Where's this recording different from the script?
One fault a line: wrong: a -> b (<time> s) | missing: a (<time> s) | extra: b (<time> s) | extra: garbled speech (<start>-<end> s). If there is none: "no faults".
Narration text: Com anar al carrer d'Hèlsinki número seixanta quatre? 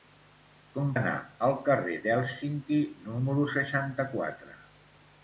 no faults